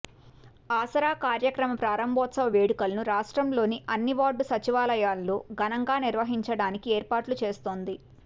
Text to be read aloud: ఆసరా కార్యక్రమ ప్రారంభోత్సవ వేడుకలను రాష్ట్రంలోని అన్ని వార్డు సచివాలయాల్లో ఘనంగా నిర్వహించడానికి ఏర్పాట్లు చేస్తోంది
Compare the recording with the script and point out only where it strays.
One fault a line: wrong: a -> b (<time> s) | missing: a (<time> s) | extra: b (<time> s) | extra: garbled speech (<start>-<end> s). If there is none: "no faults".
no faults